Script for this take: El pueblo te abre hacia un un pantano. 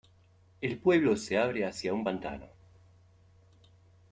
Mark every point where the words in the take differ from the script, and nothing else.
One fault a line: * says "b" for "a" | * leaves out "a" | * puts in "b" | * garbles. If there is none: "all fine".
* says "se" for "te"
* leaves out "un"